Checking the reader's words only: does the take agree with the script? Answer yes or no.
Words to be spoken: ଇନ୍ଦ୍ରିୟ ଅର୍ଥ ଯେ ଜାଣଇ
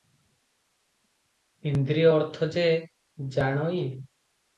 yes